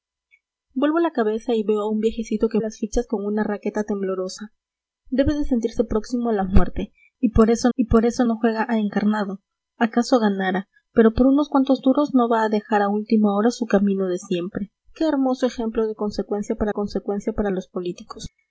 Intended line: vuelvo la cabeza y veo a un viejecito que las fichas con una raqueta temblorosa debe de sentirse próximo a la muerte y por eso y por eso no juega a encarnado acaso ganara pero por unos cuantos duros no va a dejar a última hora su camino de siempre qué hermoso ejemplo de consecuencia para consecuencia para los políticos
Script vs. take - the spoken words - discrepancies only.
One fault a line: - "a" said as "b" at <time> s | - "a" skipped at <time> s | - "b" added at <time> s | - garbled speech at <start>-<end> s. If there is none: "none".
none